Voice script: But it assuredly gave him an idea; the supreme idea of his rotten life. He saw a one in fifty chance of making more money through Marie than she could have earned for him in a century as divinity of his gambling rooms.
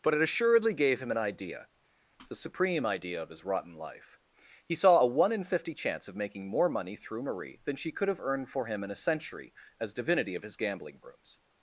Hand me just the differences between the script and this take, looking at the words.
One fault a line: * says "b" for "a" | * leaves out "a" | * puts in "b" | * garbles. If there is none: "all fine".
all fine